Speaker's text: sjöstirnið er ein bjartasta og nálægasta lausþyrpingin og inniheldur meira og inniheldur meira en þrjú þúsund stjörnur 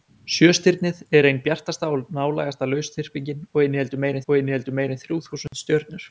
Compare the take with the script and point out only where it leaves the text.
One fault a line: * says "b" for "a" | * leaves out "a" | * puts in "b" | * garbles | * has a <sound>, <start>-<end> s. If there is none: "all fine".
* has a dropout, 5.5-5.5 s